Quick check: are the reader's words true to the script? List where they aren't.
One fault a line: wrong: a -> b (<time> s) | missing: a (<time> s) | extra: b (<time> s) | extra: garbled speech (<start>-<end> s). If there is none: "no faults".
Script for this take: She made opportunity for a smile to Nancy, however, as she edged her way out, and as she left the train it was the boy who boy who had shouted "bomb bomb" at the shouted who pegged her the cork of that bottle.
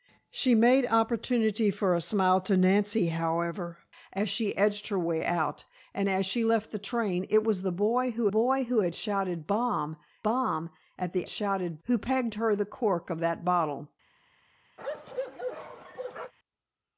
no faults